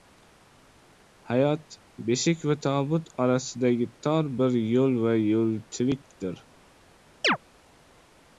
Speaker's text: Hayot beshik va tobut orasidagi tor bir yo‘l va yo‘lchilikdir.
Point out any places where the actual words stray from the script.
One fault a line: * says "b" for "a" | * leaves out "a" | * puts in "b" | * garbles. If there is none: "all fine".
all fine